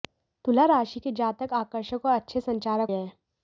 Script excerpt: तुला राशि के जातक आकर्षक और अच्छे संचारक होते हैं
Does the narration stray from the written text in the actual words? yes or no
yes